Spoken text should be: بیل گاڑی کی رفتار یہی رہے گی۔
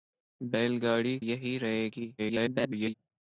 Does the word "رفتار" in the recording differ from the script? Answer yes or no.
yes